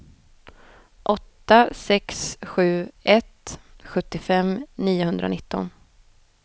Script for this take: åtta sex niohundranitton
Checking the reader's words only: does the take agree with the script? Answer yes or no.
no